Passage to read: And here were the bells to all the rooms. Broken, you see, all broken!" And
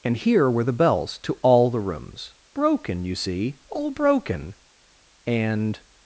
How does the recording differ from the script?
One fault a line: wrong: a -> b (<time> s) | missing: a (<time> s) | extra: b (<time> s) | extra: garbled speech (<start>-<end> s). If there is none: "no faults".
no faults